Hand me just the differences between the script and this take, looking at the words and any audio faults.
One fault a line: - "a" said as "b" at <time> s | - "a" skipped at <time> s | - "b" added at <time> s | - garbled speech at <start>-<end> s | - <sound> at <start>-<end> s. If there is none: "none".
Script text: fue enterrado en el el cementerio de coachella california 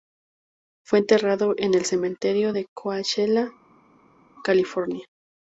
- "el" skipped at 1.8 s